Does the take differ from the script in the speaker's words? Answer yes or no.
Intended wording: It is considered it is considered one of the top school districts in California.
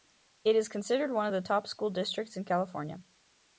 yes